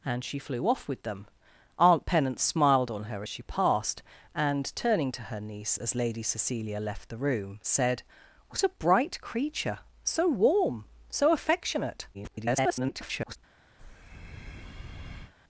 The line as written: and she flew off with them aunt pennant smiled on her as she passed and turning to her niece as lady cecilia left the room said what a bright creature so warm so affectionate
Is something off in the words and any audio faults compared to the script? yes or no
yes